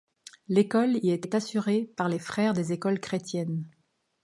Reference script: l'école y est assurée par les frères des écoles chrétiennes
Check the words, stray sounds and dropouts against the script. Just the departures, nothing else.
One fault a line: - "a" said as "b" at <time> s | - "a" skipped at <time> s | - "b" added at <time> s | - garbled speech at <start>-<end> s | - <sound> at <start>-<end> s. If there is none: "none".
- "est" added at 1.2 s